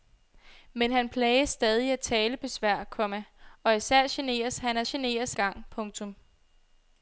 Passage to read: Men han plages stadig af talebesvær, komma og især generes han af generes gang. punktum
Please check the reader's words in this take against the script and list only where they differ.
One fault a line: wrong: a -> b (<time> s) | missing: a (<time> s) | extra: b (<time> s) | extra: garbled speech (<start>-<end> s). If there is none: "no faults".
no faults